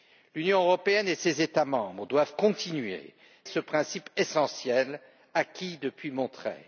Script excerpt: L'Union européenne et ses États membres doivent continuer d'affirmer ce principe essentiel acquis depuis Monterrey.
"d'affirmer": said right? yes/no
no